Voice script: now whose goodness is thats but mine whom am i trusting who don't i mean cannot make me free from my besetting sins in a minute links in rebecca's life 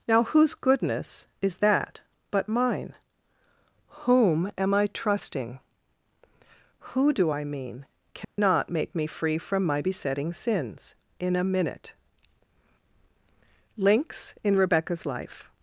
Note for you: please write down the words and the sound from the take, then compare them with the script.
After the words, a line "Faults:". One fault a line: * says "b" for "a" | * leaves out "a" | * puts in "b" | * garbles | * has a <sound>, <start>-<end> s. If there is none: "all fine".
now whose goodness is that but mine whom am i trusting who do i mean cannot make me free from my besetting sins in a minute links in rebecca's life
Faults:
* says "that" for "thats"
* says "do" for "don't"
* has a dropout, 8.2-8.4 s